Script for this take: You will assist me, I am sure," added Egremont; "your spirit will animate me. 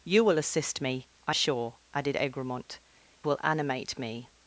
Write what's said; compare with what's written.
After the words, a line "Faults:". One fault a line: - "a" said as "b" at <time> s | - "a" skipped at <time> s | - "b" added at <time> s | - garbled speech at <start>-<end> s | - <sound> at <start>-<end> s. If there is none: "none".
You will assist me, I sure," added Egremont; "will animate me.
Faults:
- "am" skipped at 1.4 s
- "your spirit" skipped at 2.8 s